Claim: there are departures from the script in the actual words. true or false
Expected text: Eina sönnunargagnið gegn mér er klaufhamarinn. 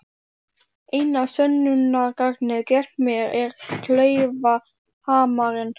false